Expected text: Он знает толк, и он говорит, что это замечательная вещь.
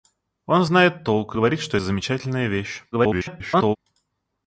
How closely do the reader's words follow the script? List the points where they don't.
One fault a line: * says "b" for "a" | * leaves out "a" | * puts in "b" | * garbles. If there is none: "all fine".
* leaves out "он"
* leaves out "это"
* garbles